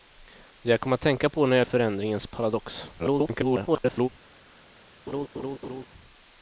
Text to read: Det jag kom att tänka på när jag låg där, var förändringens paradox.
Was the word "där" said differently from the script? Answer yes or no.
yes